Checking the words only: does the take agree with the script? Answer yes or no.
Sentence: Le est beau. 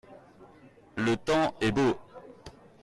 no